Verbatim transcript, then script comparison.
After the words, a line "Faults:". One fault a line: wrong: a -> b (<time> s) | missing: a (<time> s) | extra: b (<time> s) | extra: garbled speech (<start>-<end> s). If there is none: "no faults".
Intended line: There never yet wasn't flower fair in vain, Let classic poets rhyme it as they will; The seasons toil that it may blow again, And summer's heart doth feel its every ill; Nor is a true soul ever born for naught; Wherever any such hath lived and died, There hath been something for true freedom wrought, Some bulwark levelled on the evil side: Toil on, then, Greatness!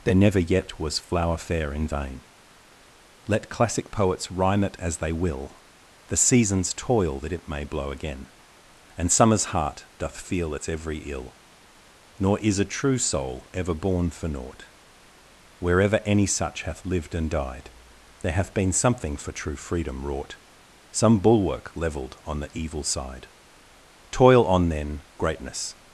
There never yet was flower fair in vain, Let classic poets rhyme it as they will; The seasons toil that it may blow again, And summer's heart doth feel its every ill; Nor is a true soul ever born for naught; Wherever any such hath lived and died, There hath been something for true freedom wrought, Some bulwark levelled on the evil side: Toil on, then, Greatness!
Faults:
wrong: wasn't -> was (0.8 s)